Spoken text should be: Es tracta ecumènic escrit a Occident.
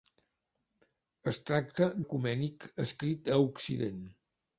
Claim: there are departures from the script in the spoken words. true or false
false